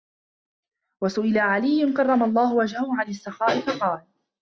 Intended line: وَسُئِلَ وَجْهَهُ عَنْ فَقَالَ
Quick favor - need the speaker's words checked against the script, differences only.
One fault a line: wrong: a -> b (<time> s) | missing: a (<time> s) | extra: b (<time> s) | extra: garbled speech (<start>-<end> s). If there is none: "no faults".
extra: عَلِيٌّ كَرَّمَ اللَّهُ (1.4 s)
extra: السَّخَاءِ (3.1 s)